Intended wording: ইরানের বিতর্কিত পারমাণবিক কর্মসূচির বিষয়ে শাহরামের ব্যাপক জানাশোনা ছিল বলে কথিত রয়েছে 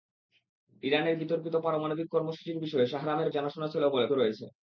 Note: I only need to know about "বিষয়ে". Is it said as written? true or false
true